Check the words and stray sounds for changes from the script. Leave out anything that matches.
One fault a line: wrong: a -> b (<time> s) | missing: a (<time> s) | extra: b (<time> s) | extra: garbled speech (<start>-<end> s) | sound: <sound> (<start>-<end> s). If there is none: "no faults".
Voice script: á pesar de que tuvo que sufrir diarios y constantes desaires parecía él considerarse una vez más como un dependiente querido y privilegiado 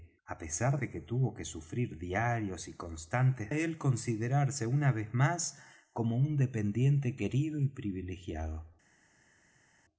missing: desaires parecía (3.5 s)